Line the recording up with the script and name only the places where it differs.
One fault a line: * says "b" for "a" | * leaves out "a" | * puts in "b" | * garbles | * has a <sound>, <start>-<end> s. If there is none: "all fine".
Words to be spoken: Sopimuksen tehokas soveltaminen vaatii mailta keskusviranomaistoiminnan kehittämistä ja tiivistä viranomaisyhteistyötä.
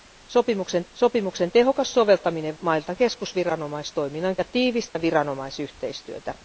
* puts in "sopimuksen"
* leaves out "vaatii"
* leaves out "kehittämistä"
* has a dropout, 4.9-5.0 s